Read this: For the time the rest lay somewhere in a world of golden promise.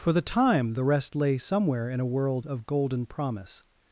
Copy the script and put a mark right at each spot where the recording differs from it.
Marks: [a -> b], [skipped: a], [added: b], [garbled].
For the time the rest lay somewhere in a world of golden promise.